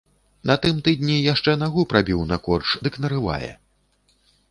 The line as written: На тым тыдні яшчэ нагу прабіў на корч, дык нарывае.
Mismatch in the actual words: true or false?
false